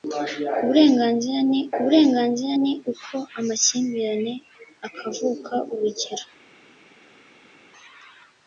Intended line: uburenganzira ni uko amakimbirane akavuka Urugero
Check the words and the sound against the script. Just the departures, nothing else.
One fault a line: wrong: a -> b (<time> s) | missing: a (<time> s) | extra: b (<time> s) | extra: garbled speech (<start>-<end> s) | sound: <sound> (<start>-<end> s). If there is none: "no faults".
extra: uburenganzira ni (1.8 s)